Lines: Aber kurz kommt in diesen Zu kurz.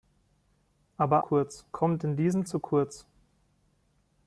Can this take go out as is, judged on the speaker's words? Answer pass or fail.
pass